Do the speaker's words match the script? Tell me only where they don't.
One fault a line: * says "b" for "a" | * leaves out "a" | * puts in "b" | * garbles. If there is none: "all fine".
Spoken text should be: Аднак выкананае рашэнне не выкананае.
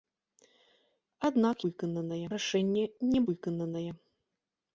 all fine